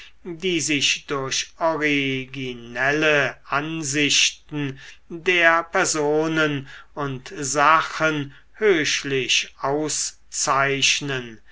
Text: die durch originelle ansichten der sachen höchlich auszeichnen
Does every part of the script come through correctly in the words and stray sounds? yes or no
no